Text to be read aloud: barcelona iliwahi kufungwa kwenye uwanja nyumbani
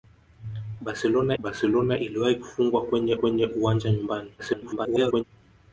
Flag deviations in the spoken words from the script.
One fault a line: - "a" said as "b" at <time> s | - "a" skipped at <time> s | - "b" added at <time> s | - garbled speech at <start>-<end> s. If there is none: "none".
- "barcelona" added at 1.4 s
- "kwenye" added at 3.2 s
- garbled speech at 4.4-5.2 s